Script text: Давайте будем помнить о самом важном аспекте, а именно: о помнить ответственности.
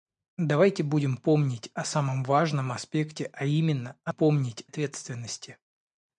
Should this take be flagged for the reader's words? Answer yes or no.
no